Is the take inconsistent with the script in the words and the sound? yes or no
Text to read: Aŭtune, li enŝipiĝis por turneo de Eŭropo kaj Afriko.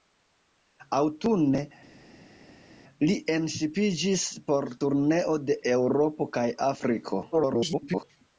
yes